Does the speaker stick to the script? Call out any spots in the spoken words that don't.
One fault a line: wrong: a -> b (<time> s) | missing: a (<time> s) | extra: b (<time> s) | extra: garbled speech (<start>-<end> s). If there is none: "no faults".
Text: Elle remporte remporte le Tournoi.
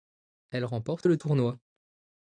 missing: remporte (1.1 s)